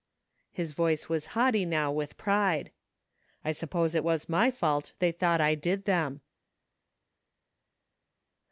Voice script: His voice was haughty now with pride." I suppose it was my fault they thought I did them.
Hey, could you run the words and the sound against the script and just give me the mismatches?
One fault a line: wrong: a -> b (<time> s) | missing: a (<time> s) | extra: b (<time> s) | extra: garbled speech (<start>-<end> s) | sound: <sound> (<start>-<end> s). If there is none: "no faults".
no faults